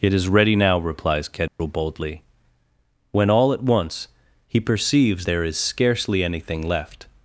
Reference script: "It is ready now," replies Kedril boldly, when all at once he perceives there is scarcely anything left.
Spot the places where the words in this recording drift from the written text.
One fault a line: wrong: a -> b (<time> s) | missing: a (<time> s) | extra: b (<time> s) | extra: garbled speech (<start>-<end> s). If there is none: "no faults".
no faults